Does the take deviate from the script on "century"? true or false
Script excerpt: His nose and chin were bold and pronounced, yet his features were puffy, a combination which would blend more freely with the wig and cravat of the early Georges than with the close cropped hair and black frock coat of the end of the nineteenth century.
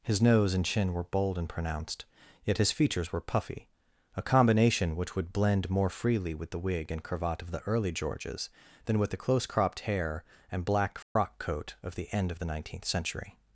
false